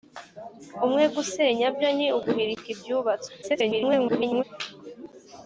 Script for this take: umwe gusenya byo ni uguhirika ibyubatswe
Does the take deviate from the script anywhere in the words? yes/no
yes